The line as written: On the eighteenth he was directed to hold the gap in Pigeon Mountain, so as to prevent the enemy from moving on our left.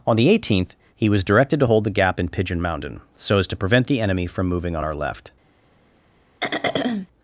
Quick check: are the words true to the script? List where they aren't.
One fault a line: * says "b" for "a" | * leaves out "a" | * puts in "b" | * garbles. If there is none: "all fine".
all fine